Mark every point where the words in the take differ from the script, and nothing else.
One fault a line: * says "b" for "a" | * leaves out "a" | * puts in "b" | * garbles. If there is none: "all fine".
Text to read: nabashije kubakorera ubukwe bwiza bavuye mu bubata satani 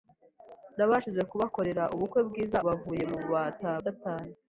all fine